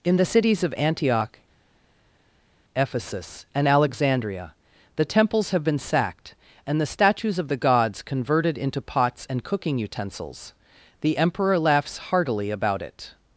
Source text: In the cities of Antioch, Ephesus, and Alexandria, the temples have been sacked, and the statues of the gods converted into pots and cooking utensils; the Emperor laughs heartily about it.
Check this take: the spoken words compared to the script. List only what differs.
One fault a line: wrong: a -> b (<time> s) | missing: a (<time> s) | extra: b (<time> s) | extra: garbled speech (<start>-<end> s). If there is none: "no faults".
no faults